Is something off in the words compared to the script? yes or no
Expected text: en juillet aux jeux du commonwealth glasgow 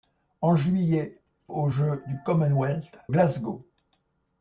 no